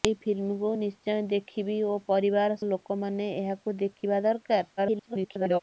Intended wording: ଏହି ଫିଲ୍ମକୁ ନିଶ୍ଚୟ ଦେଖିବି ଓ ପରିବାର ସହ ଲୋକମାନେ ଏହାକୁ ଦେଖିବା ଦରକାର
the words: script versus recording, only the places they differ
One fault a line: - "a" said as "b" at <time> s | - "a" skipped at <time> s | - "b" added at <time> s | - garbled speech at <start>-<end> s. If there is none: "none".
- "ସହ" skipped at 2.6 s
- garbled speech at 4.8-5.6 s